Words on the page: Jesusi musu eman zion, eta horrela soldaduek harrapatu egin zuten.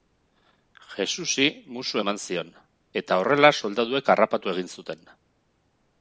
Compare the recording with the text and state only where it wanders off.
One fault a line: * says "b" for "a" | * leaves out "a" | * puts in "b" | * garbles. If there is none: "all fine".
all fine